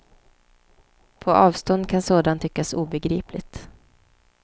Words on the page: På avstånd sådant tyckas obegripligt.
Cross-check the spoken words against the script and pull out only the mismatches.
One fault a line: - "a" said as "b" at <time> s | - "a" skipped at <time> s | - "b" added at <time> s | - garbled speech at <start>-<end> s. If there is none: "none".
- "kan" added at 1.9 s